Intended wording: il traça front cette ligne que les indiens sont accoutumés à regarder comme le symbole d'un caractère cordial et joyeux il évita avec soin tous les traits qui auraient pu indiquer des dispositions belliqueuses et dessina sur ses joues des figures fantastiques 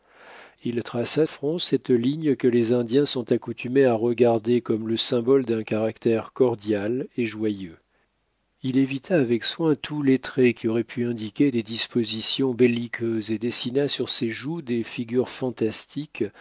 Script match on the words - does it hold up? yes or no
yes